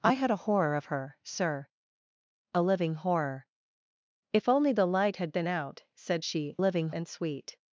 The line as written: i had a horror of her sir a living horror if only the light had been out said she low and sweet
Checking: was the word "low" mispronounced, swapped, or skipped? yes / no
yes